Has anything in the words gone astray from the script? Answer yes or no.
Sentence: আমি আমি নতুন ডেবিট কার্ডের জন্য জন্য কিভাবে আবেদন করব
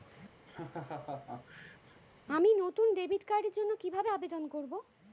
yes